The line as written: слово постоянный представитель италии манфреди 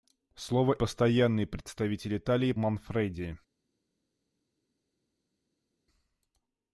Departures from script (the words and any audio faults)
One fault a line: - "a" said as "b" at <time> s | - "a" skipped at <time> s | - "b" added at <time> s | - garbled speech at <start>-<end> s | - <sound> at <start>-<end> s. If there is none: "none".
none